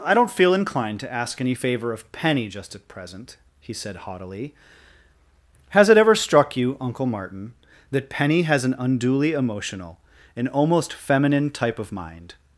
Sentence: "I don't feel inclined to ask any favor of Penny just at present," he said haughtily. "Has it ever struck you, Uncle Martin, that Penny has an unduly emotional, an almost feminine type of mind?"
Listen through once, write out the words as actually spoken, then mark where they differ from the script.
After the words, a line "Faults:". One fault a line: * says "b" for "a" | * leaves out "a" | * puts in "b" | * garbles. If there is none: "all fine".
"I don't feel inclined to ask any favor of Penny just at present," he said haughtily. "Has it ever struck you, Uncle Martin, that Penny has an unduly emotional, an almost feminine type of mind?"
Faults:
all fine